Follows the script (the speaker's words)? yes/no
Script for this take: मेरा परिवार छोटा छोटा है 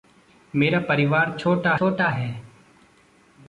yes